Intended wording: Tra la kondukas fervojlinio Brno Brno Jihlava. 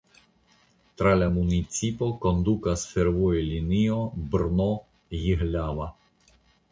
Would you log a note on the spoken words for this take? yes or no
yes